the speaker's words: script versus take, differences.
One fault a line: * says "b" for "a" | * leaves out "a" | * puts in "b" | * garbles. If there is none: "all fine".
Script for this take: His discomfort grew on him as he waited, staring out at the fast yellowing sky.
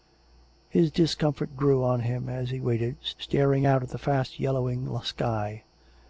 all fine